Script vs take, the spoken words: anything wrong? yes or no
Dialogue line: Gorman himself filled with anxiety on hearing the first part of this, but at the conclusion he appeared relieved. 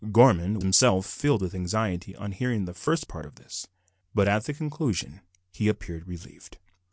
no